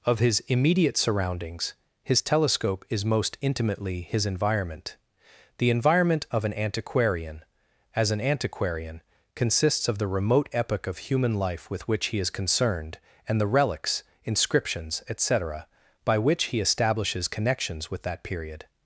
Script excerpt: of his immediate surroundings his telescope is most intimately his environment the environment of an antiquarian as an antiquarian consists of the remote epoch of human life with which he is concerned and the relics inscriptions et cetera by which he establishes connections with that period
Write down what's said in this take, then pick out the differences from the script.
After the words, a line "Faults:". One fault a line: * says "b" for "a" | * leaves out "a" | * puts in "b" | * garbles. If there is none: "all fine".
of his immediate surroundings his telescope is most intimately his environment the environment of an antiquarian as an antiquarian consists of the remote epoch of human life with which he is concerned and the relics inscriptions et cetera by which he establishes connections with that period
Faults:
all fine